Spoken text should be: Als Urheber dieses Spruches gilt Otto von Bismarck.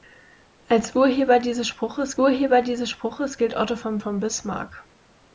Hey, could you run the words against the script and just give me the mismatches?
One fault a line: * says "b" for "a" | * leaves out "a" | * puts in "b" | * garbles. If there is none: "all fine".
* puts in "Urheber dieses Spruches"
* puts in "von"